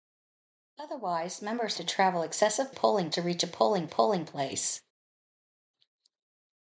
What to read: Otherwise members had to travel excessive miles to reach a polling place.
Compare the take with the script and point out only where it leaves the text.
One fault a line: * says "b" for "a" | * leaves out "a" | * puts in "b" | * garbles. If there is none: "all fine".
* leaves out "had"
* says "polling" for "miles"
* puts in "polling"